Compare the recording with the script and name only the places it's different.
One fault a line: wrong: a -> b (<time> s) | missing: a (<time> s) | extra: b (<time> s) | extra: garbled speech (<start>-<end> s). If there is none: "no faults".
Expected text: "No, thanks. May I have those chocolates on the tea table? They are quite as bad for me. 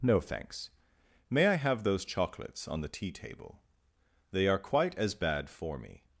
no faults